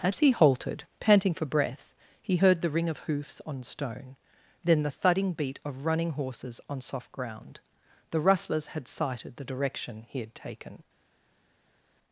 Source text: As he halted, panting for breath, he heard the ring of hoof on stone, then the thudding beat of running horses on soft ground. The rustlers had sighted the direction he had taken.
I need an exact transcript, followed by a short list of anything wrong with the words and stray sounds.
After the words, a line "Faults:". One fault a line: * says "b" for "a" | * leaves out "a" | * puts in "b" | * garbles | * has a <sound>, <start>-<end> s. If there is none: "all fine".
As he halted, panting for breath, he heard the ring of hoofs on stone, then the thudding beat of running horses on soft ground. The rustlers had sighted the direction he had taken.
Faults:
* says "hoofs" for "hoof"